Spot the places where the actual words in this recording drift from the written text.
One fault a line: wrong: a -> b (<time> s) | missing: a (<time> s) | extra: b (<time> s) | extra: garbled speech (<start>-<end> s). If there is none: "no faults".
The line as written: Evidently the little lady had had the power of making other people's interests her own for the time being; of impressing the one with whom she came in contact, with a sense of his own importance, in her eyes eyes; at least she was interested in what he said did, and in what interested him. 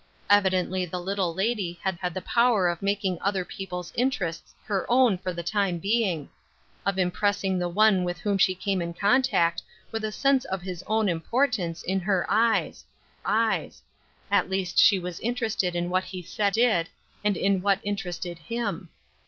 no faults